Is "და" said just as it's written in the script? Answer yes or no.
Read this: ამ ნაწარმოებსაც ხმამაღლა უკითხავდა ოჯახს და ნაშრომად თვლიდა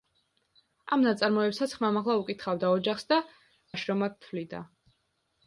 yes